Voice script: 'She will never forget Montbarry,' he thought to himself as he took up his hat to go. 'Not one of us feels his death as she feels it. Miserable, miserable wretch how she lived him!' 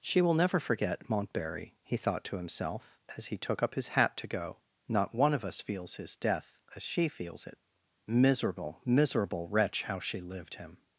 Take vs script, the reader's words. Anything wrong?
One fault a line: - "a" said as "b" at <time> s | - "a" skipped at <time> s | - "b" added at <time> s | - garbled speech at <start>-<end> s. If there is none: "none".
none